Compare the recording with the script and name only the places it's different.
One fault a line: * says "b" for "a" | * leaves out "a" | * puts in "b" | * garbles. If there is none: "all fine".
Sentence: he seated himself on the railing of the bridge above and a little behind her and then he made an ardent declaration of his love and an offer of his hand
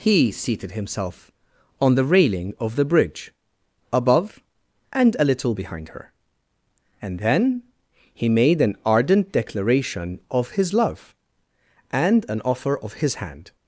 all fine